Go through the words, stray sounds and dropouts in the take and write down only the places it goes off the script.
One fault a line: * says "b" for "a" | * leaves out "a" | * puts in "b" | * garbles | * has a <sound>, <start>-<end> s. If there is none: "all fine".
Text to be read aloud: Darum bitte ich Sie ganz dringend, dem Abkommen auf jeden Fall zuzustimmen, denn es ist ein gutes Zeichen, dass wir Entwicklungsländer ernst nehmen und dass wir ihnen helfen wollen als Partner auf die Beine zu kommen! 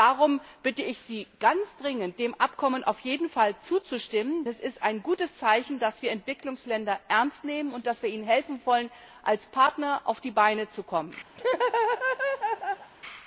* leaves out "denn"
* has a laugh, 11.4-12.9 s